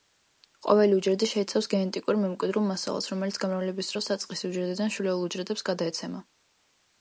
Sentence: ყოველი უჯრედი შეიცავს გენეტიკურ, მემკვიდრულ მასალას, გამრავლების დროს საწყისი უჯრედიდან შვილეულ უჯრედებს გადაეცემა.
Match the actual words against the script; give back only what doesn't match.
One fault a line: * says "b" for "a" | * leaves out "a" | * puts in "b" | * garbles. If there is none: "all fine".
* puts in "რომელიც"